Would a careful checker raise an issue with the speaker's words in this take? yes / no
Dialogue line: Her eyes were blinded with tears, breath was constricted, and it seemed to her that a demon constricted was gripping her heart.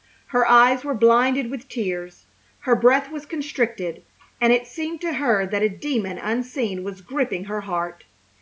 yes